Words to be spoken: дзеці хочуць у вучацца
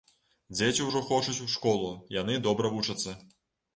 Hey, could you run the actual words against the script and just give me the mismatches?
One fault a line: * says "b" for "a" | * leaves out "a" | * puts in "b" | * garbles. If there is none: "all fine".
* puts in "ўжо"
* puts in "школу яны добра"